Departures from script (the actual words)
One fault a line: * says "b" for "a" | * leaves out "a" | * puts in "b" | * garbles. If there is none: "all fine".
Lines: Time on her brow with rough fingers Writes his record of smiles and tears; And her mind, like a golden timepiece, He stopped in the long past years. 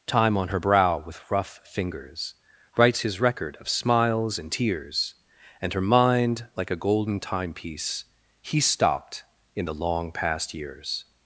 all fine